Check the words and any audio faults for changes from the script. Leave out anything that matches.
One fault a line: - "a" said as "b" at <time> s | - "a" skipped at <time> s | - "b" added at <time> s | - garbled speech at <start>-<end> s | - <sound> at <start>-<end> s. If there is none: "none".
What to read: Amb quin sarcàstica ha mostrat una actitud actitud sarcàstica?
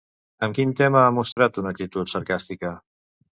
- "sarcàstica" said as "tema" at 0.8 s
- dropout at 1.3-1.4 s
- "actitud" skipped at 2.1 s